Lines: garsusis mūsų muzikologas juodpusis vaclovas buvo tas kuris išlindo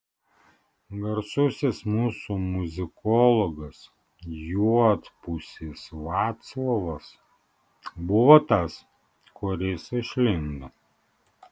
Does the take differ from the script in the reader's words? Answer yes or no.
no